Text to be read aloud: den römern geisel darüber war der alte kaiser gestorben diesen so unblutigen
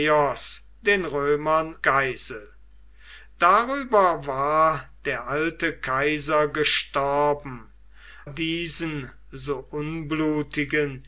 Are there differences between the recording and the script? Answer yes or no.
no